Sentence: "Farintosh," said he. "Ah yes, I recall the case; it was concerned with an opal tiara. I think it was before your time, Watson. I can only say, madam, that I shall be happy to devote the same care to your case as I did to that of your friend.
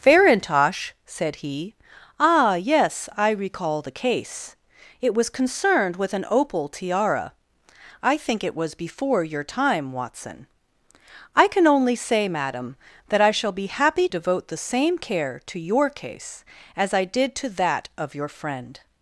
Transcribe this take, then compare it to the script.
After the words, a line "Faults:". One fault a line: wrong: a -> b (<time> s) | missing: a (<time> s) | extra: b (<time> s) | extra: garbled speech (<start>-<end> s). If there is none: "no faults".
"Farintosh," said he. "Ah yes, I recall the case; it was concerned with an opal tiara. I think it was before your time, Watson. I can only say, madam, that I shall be happy devote the same care to your case as I did to that of your friend.
Faults:
missing: to (14.1 s)